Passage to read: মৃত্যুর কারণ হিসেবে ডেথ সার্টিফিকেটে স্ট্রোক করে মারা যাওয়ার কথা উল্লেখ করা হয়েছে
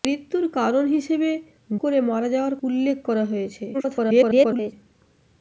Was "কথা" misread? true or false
true